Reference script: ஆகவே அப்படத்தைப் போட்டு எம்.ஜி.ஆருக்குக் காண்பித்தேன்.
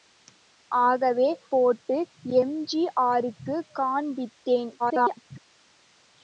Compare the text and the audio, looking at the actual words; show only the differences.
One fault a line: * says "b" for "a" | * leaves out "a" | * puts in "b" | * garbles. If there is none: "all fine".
* leaves out "அப்படத்தைப்"
* garbles